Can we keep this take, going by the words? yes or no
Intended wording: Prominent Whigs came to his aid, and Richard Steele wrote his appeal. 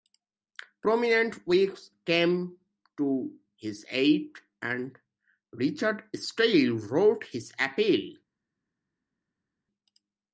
yes